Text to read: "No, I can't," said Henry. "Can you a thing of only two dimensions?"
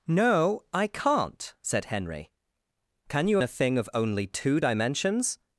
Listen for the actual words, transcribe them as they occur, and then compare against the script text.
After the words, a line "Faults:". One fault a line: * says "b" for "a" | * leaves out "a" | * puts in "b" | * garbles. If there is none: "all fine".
"No, I can't," said Henry. "Can you a thing of only two dimensions?"
Faults:
all fine